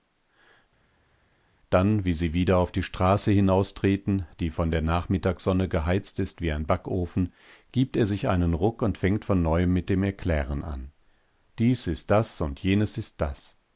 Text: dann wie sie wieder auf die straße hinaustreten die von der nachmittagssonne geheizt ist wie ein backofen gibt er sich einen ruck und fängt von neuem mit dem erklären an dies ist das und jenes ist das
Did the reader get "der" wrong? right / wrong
right